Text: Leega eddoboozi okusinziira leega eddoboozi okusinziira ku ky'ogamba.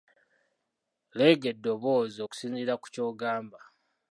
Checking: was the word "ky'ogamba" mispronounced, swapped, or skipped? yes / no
no